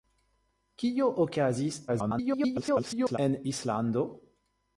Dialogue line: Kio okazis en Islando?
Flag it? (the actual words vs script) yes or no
yes